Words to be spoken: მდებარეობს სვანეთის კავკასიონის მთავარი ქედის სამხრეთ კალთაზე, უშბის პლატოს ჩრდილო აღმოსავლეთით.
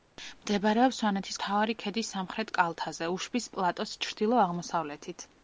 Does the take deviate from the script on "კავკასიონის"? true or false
true